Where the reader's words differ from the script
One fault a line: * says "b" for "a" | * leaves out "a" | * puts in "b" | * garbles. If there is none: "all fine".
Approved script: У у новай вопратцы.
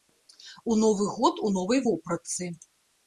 * puts in "новы год"